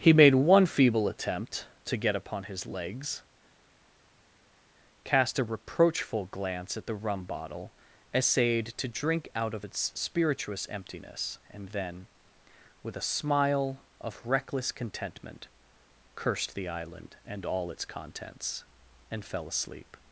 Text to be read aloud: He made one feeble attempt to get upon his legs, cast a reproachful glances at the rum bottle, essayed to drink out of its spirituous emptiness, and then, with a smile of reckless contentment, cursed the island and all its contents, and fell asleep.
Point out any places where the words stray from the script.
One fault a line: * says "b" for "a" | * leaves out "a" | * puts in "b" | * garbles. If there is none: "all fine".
* says "glance" for "glances"